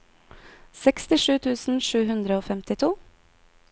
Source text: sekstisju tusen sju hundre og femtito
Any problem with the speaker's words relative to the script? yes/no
no